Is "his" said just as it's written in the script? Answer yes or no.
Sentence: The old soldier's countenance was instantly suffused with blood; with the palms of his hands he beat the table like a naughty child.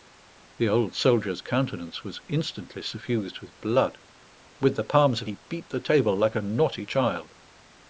no